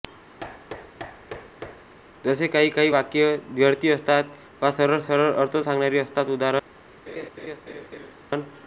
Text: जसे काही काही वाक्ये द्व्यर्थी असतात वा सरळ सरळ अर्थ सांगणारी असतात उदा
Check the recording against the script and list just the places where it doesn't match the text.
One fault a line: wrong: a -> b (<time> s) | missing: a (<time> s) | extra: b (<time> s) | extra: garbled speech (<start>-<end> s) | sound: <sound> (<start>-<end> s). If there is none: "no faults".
sound: thud (0.4-1.9 s)
sound: laugh (7.1-8.1 s)